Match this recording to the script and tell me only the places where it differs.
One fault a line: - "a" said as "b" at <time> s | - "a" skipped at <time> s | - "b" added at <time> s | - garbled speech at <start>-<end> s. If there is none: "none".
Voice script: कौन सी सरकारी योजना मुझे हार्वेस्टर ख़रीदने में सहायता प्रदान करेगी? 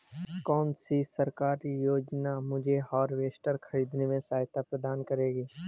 none